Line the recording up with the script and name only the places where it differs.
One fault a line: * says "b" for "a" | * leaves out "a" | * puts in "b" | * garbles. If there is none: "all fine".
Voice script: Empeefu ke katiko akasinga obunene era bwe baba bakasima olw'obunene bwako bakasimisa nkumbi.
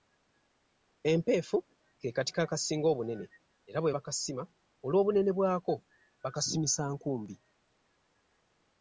* leaves out "baba"